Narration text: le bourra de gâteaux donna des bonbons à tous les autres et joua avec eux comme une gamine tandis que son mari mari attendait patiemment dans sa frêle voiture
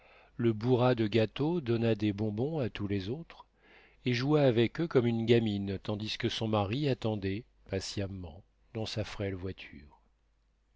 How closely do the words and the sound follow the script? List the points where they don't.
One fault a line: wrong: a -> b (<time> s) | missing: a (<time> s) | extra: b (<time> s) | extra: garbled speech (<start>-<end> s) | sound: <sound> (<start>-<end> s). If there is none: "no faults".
missing: mari (6.9 s)